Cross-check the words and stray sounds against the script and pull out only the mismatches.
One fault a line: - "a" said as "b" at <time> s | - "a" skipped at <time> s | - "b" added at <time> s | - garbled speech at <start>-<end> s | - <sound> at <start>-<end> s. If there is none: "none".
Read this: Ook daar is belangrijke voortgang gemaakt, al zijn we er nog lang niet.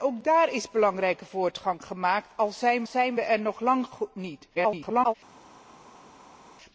- "zijn" added at 2.8 s
- garbled speech at 4.5-5.1 s